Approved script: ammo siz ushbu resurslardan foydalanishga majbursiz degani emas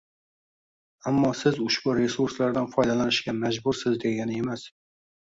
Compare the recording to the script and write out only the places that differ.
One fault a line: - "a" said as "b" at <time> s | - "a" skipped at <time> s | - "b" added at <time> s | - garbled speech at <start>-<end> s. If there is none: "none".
none